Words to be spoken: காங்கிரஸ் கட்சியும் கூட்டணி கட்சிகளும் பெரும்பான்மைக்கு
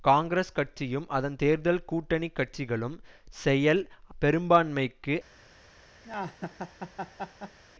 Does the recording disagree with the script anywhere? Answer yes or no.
yes